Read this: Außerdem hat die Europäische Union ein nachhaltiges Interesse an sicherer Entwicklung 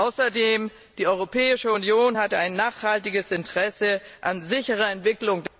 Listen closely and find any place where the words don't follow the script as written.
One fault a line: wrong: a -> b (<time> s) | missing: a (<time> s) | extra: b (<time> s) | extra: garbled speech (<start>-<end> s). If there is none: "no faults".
no faults